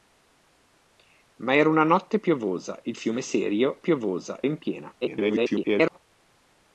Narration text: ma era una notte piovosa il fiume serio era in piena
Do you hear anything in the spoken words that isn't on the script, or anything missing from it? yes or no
yes